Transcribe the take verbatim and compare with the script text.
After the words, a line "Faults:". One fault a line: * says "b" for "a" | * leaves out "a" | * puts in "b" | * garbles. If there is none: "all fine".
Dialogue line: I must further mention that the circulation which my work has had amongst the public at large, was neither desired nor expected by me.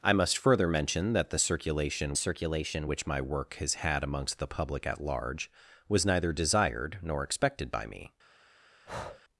I must further mention that the circulation circulation which my work has had amongst the public at large, was neither desired nor expected by me.
Faults:
* puts in "circulation"